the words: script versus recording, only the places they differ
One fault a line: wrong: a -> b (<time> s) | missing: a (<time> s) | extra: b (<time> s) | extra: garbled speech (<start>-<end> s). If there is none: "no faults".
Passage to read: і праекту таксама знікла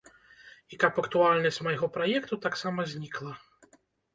extra: каб актуальнасць майго (0.8 s)